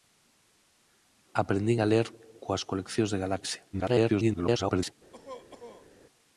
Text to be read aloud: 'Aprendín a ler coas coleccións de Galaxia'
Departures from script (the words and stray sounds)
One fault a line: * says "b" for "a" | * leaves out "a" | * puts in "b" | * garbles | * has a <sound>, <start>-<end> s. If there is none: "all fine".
* garbles
* has a cough, 5.1-5.9 s